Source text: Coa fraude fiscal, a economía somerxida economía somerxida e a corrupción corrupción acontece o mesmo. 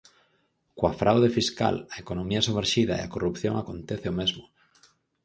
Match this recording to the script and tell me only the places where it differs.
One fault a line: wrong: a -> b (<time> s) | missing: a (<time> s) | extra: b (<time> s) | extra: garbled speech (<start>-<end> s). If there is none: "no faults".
missing: economía somerxida (2.9 s)
missing: corrupción (3.5 s)